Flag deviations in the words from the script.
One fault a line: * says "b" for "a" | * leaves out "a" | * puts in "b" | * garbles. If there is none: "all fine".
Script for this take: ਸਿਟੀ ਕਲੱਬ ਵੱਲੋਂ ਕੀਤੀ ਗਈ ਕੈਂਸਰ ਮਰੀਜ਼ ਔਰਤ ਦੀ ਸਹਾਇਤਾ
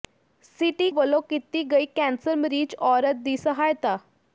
* leaves out "ਕਲੱਬ"